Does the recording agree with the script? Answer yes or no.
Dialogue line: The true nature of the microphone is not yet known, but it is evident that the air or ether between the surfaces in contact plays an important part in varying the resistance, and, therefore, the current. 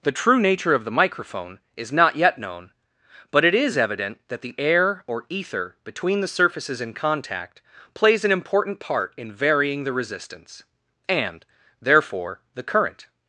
yes